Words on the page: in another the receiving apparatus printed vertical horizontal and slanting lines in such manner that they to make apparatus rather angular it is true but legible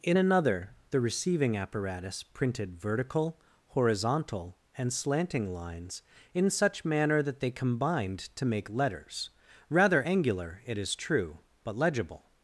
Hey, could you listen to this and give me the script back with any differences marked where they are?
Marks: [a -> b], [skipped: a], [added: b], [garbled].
in another the receiving apparatus printed vertical horizontal and slanting lines in such manner that they [added: combined] to make [apparatus -> letters] rather angular it is true but legible